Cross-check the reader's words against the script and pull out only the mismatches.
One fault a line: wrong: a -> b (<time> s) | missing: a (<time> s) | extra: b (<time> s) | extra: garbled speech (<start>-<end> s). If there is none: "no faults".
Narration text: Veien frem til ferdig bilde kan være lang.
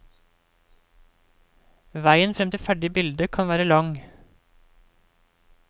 no faults